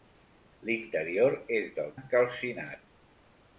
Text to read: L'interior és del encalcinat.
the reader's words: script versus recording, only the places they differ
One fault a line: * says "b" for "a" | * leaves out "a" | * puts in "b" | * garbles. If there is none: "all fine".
all fine